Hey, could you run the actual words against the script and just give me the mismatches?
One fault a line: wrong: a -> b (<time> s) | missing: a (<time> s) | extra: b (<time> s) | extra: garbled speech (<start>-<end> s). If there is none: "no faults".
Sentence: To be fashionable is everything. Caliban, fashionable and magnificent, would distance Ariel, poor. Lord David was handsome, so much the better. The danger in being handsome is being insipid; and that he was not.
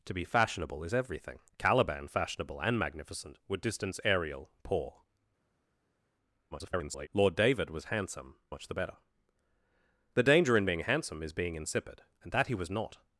extra: garbled speech (6.5-7.1 s)
missing: so (8.4 s)